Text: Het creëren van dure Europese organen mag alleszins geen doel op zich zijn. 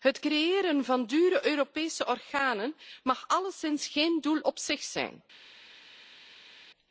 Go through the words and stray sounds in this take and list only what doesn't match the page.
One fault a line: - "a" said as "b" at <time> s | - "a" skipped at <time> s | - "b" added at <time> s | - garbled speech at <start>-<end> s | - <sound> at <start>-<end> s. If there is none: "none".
none